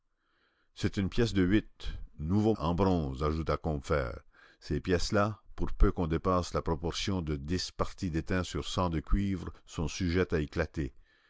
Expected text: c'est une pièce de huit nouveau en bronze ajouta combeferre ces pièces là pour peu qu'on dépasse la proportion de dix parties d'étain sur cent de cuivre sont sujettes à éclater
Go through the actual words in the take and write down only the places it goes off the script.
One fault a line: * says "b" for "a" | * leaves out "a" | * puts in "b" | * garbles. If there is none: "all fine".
all fine